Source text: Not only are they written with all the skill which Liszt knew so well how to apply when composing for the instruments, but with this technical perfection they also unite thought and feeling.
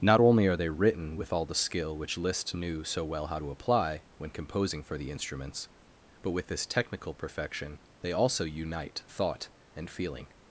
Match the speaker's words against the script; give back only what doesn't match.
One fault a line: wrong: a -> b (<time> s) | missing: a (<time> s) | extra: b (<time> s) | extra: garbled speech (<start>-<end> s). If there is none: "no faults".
no faults